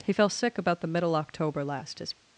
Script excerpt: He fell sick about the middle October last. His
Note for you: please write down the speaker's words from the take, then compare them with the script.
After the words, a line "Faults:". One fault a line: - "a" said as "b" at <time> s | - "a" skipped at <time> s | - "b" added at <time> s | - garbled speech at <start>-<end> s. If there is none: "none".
He fell sick about the middle October last. His
Faults:
none